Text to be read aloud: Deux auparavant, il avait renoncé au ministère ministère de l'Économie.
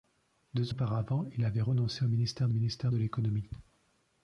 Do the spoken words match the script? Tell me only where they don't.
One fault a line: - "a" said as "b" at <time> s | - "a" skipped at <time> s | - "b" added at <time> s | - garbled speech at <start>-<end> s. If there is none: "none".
none